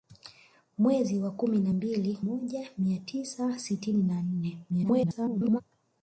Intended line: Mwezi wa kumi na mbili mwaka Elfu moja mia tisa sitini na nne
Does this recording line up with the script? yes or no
no